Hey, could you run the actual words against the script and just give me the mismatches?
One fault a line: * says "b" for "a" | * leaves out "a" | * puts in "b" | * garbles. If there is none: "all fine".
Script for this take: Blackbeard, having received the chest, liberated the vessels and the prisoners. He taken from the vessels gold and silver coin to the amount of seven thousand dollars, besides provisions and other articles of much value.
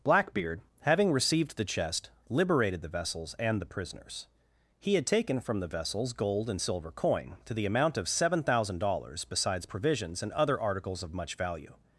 * puts in "had"